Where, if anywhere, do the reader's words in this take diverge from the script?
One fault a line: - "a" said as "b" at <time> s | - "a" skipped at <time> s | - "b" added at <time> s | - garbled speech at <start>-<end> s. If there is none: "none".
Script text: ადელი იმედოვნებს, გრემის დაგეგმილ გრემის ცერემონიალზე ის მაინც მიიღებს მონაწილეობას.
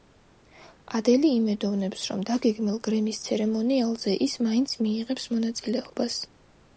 - "გრემის" said as "რომ" at 2.1 s